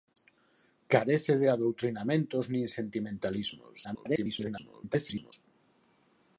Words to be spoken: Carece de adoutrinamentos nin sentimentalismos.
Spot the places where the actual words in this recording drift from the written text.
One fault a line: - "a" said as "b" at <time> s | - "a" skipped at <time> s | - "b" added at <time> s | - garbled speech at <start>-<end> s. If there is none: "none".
- garbled speech at 3.8-5.3 s